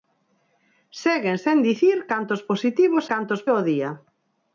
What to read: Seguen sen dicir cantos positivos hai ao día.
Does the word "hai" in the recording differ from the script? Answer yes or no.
yes